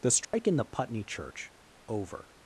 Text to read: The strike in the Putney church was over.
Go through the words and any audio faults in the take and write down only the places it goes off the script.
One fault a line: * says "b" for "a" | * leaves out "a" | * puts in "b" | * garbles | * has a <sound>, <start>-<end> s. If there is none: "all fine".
* has a dropout, 0.2-0.3 s
* leaves out "was"